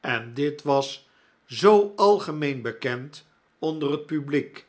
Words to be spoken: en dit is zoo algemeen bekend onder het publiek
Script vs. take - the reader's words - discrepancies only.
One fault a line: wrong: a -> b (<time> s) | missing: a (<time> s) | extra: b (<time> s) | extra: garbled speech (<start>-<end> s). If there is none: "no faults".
wrong: is -> was (0.6 s)